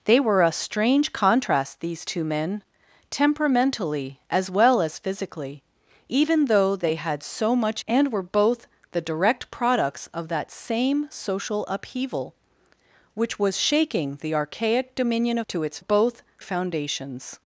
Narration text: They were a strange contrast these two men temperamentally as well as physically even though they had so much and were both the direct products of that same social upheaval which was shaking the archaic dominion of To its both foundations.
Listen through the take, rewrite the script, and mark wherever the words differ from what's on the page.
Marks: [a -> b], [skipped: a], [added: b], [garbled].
They were a strange contrast these two men temperamentally as well as physically even though they had so much and were both the direct products of that same social upheaval which was shaking the archaic dominion of To its both foundations.